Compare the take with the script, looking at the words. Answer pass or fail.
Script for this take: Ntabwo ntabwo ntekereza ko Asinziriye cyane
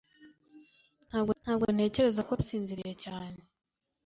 pass